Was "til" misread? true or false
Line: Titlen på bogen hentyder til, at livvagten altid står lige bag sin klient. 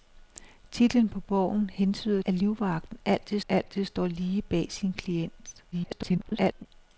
true